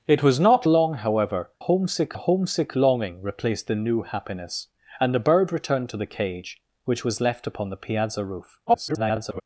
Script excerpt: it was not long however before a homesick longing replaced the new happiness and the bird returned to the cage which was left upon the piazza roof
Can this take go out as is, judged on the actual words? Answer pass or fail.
fail